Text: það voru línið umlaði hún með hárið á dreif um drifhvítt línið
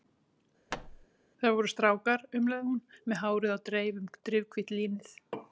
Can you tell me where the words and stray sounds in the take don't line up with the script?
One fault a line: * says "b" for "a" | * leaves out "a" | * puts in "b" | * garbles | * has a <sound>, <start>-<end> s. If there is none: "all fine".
* has a thud, 0.7-1.1 s
* says "strákar" for "línið"